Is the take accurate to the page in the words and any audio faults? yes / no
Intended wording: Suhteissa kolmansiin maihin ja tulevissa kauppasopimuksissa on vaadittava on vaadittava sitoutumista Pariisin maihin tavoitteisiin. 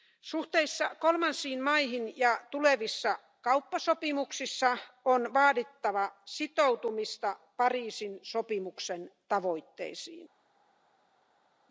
no